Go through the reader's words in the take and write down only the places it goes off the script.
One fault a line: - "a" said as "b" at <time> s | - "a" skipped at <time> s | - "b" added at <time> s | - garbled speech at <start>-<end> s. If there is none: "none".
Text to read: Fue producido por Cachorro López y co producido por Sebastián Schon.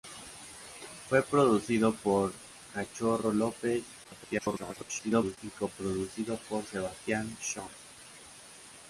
- garbled speech at 4.0-5.4 s